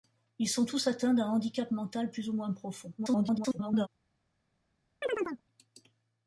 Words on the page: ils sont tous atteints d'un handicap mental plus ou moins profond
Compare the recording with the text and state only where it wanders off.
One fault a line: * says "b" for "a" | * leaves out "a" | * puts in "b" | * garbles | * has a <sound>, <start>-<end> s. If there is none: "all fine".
* garbles
* has a chirp, 5.0-5.4 s